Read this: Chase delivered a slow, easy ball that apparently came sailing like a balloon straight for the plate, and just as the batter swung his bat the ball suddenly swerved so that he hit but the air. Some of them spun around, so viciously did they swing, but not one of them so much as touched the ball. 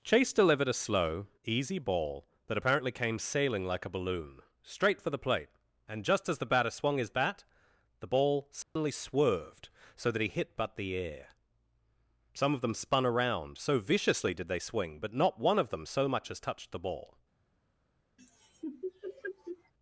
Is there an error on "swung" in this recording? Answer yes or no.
no